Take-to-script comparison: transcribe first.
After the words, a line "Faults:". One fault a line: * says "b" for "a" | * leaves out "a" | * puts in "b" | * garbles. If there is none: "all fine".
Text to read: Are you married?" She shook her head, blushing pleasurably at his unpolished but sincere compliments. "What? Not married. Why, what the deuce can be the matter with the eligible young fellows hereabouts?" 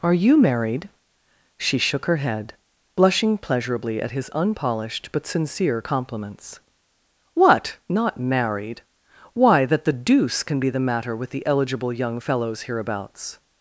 Are you married?" She shook her head, blushing pleasurably at his unpolished but sincere compliments. "What? Not married. Why, that the deuce can be the matter with the eligible young fellows hereabouts?"
Faults:
* says "that" for "what"